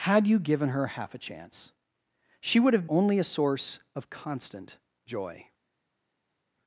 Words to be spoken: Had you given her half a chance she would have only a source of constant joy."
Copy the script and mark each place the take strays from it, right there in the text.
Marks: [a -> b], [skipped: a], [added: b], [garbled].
Had you given her half a chance she would have only a source of constant joy."